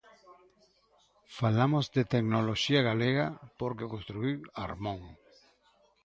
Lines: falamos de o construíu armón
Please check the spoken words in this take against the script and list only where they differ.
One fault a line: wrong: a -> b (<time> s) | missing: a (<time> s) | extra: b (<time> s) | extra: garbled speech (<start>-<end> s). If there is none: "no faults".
extra: tecnoloxía galega porque (2.1 s)